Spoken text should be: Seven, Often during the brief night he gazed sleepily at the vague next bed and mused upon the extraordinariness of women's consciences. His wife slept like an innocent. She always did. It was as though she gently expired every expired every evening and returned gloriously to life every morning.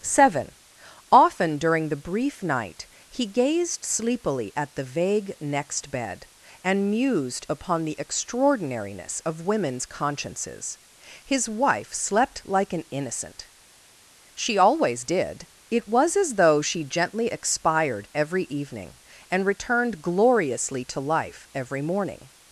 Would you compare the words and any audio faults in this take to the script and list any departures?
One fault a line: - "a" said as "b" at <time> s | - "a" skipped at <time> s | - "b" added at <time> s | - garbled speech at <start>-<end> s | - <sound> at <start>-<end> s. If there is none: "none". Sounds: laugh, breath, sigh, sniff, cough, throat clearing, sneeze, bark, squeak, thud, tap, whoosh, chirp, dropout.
- "expired every" skipped at 18.4 s